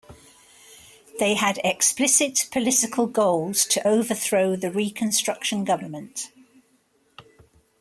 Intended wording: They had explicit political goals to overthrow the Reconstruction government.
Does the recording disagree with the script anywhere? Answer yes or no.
no